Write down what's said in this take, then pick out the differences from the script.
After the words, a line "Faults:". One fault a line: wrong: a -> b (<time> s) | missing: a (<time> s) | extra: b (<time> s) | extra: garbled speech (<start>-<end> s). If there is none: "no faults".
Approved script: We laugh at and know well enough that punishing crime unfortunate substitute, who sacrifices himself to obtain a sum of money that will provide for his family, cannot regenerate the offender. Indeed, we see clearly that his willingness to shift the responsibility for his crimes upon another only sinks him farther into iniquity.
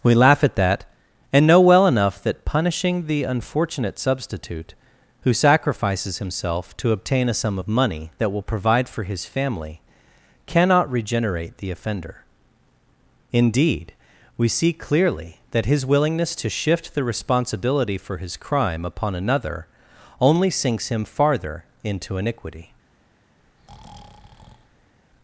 We laugh at that and know well enough that punishing the unfortunate substitute, who sacrifices himself to obtain a sum of money that will provide for his family, cannot regenerate the offender. Indeed, we see clearly that his willingness to shift the responsibility for his crime upon another only sinks him farther into iniquity.
Faults:
extra: that (0.6 s)
wrong: crime -> the (3.0 s)
wrong: crimes -> crime (18.4 s)